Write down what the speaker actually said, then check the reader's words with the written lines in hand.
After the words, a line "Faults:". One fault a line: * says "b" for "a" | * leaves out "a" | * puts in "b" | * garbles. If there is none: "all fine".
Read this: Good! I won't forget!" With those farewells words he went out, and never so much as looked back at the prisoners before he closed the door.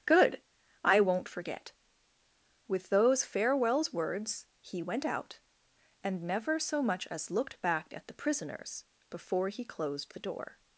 Good! I won't forget!" With those farewells words he went out, and never so much as looked back at the prisoners before he closed the door.
Faults:
all fine